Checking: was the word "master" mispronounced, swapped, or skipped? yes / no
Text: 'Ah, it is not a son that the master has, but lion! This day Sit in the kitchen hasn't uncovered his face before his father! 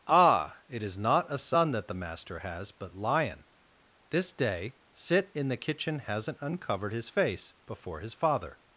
no